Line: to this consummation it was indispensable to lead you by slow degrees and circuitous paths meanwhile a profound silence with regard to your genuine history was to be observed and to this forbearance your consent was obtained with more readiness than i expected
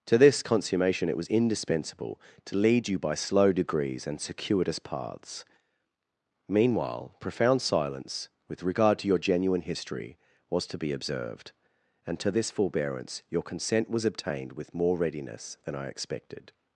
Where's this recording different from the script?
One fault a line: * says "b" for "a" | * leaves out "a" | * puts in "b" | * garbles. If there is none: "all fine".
* leaves out "a"